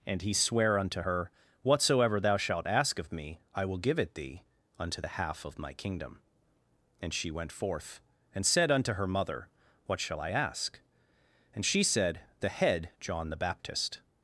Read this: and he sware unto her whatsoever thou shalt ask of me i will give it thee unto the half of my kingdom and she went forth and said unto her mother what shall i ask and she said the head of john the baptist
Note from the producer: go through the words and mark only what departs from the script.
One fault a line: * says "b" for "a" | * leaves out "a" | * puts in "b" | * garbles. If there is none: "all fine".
* leaves out "of"